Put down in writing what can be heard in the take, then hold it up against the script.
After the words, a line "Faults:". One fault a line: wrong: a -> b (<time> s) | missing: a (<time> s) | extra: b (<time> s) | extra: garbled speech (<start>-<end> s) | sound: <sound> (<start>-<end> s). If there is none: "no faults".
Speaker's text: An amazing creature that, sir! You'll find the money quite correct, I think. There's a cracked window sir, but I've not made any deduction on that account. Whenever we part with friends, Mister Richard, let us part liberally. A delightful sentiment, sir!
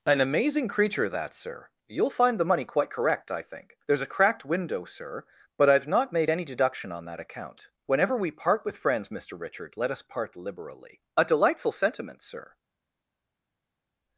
An amazing creature that, sir! You'll find the money quite correct, I think. There's a cracked window sir, but I've not made any deduction on that account. Whenever we part with friends, Mister Richard, let us part liberally. A delightful sentiment, sir!
Faults:
no faults